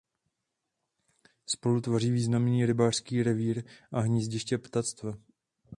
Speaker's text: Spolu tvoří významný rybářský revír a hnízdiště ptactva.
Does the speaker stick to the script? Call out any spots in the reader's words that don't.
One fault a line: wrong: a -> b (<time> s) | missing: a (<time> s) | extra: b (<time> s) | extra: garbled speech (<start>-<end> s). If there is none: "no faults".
no faults